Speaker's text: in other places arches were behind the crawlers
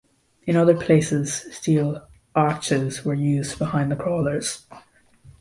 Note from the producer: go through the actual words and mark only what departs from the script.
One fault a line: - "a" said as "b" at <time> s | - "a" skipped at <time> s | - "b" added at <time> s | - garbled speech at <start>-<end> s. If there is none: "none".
- "steel" added at 1.6 s
- "used" added at 3.1 s